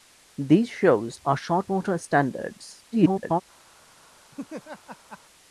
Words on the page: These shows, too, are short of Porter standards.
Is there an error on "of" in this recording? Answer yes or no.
yes